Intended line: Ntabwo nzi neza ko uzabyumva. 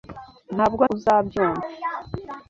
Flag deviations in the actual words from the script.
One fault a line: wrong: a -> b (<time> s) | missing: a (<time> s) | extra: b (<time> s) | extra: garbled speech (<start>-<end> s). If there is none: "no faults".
missing: nzi neza ko (0.8 s)